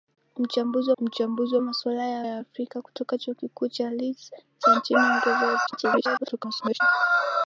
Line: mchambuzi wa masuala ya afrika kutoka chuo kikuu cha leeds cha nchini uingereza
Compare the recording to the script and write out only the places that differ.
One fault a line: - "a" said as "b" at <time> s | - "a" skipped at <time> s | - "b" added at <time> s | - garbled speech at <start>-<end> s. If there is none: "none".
- "mchambuzi" added at 1.0 s
- "ya" added at 2.2 s
- garbled speech at 5.7-6.8 s